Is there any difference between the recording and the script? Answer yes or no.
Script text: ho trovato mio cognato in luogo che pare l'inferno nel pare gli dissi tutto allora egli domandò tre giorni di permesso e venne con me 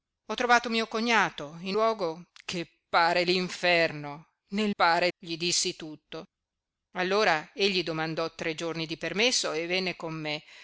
no